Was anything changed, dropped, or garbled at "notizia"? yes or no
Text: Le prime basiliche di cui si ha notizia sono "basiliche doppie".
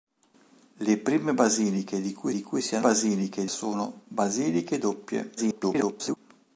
yes